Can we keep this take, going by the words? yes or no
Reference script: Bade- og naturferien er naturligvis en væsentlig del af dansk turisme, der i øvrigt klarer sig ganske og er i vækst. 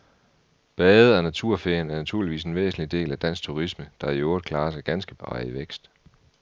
yes